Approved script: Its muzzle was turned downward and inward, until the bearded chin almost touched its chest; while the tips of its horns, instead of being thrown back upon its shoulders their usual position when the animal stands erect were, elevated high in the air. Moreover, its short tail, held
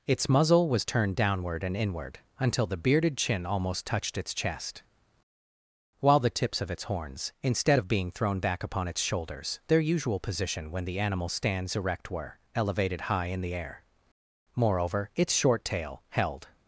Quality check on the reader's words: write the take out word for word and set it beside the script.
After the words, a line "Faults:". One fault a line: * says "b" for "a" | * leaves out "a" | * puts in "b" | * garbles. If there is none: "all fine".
Its muzzle was turned downward and inward, until the bearded chin almost touched its chest; while the tips of its horns, instead of being thrown back upon its shoulders their usual position when the animal stands erect were, elevated high in the air. Moreover, its short tail, held
Faults:
all fine